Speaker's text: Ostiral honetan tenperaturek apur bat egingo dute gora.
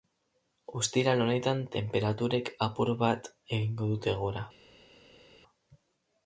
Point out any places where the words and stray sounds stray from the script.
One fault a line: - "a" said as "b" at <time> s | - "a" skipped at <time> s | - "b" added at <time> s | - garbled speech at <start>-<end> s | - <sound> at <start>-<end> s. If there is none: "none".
none